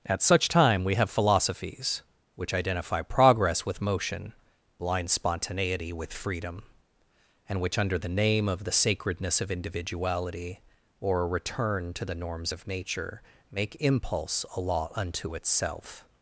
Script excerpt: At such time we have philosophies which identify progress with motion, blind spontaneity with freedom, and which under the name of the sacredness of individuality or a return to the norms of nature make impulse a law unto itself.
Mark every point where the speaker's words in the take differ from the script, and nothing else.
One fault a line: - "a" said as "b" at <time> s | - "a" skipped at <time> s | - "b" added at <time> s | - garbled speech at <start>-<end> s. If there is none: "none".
none